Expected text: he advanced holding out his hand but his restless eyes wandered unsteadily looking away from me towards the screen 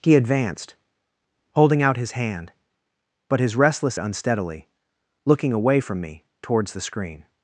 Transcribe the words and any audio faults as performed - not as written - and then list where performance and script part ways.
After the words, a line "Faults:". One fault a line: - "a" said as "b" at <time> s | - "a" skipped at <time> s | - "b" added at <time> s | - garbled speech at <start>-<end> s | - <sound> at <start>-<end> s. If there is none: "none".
he advanced holding out his hand but his restless unsteadily looking away from me towards the screen
Faults:
- "eyes wandered" skipped at 4.0 s